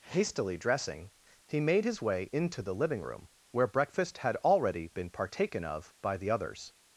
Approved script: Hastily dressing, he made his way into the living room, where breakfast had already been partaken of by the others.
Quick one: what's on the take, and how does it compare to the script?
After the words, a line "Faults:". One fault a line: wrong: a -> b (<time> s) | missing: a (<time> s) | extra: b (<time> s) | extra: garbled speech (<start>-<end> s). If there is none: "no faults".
Hastily dressing, he made his way into the living room, where breakfast had already been partaken of by the others.
Faults:
no faults